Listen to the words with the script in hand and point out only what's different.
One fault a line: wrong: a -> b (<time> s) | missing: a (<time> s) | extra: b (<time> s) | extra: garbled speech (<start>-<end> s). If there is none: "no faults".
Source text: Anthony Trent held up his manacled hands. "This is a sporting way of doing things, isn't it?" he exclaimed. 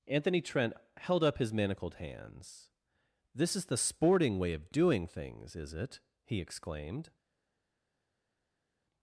wrong: a -> the (3.7 s)
wrong: isn't -> is (5.6 s)